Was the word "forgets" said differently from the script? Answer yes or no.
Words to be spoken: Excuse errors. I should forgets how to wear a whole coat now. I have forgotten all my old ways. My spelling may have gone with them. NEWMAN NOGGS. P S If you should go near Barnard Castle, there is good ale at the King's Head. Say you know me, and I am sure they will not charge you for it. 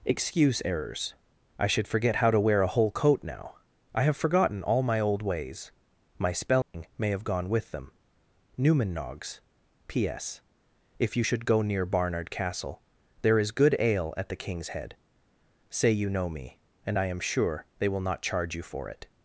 yes